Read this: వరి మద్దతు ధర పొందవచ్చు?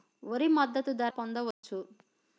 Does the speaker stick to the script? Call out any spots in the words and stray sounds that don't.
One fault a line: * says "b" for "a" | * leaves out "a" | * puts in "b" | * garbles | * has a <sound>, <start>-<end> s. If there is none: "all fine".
* has a dropout, 1.5-1.6 s